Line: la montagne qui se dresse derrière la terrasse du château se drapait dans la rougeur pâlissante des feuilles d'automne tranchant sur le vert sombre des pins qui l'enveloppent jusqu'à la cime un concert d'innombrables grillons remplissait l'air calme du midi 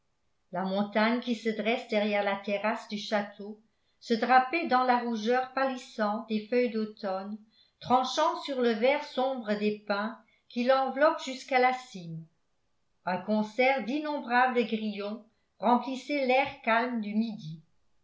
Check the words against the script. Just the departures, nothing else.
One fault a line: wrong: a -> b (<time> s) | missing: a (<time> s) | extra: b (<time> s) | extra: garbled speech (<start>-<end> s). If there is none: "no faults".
no faults